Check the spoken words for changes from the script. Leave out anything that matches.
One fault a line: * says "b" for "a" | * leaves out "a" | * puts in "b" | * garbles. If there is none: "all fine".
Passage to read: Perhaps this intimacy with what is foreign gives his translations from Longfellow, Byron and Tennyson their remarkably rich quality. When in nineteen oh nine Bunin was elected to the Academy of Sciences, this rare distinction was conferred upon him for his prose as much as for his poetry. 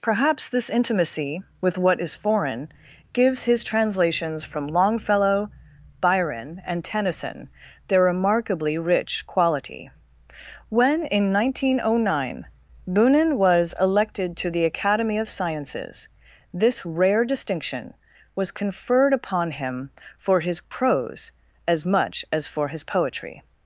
all fine